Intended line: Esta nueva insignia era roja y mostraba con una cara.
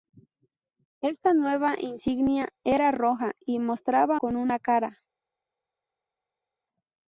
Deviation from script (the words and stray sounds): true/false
false